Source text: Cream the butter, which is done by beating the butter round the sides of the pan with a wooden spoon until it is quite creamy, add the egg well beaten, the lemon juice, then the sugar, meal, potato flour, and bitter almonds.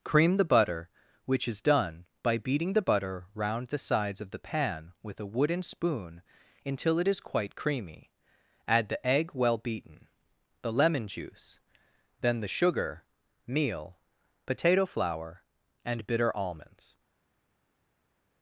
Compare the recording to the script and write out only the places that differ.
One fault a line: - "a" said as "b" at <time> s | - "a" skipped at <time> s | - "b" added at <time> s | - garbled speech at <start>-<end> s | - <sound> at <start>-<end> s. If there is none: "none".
none